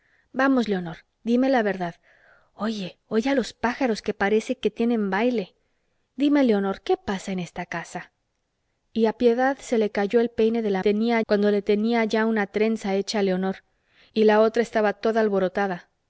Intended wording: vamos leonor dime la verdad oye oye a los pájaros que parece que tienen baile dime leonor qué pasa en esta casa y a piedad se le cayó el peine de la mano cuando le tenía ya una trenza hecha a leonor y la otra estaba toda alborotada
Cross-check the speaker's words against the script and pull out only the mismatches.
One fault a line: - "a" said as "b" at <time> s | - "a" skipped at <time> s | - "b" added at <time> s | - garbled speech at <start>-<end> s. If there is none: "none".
- "mano" said as "tenía" at 10.8 s